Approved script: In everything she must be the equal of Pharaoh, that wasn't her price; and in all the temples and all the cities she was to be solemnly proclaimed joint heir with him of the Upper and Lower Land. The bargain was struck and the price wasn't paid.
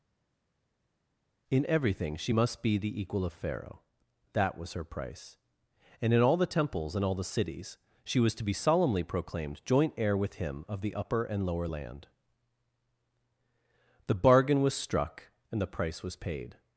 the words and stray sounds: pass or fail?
fail